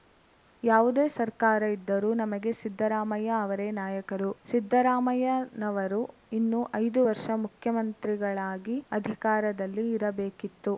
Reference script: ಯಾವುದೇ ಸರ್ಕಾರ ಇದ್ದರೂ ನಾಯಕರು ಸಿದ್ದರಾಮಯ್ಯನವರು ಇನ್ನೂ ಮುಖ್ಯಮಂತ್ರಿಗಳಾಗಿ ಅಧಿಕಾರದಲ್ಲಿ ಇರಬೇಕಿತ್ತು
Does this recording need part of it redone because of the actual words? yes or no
yes